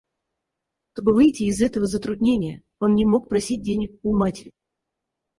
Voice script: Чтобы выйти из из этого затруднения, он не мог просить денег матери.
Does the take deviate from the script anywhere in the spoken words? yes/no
yes